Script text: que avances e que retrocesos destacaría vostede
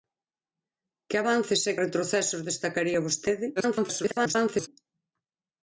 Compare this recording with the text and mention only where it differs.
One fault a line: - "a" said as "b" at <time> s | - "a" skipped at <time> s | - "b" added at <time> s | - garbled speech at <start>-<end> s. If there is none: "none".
- "que" skipped at 1.7 s
- garbled speech at 3.6-4.7 s